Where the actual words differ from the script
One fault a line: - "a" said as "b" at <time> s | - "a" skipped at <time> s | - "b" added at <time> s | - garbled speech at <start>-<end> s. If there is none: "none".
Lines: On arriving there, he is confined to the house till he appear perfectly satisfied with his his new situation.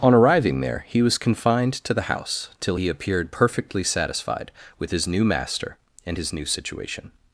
- "is" said as "was" at 1.0 s
- "appear" said as "appeared" at 2.9 s
- "new master and" added at 5.1 s